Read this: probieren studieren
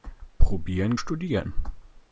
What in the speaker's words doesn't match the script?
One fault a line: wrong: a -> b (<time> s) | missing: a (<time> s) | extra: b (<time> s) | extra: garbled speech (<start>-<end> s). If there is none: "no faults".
no faults